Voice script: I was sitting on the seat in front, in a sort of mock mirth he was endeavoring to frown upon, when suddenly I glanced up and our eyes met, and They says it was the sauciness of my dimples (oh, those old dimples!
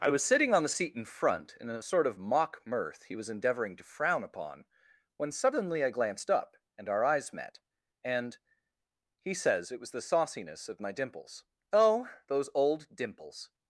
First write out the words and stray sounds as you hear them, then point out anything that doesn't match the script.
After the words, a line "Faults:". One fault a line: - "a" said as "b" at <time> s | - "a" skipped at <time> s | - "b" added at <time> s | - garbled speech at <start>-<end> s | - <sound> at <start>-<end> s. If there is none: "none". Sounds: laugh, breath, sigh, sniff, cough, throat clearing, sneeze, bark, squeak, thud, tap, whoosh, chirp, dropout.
I was sitting on the seat in front, in a sort of mock mirth he was endeavoring to frown upon, when suddenly I glanced up and our eyes met, and He says it was the sauciness of my dimples (oh, those old dimples!
Faults:
- "They" said as "He" at 9.2 s